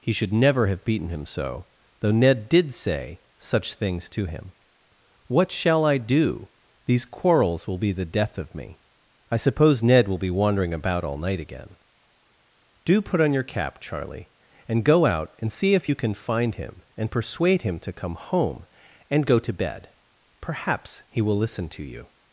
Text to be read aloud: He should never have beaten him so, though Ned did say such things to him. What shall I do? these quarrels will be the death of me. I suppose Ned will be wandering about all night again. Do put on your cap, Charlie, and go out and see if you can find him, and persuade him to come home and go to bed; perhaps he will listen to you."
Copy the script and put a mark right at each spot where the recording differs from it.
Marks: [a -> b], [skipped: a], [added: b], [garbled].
He should never have beaten him so, though Ned did say such things to him. What shall I do? these quarrels will be the death of me. I suppose Ned will be wandering about all night again. Do put on your cap, Charlie, and go out and see if you can find him, and persuade him to come home and go to bed; perhaps he will listen to you."